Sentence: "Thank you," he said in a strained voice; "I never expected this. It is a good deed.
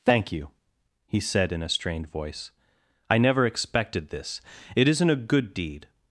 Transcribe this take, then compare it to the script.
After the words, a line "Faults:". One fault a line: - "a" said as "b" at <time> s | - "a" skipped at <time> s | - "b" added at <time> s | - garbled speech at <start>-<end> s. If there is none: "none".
"Thank you," he said in a strained voice; "I never expected this. It isn't a good deed.
Faults:
- "is" said as "isn't" at 4.9 s